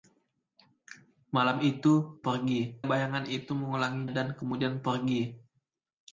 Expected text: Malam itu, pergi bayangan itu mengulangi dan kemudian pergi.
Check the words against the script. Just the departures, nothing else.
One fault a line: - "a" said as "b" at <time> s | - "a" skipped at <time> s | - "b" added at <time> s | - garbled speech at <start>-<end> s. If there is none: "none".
none